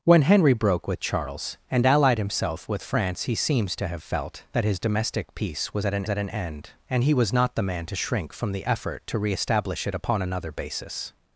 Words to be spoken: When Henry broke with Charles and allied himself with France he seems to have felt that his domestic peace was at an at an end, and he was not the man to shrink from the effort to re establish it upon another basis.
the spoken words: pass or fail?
pass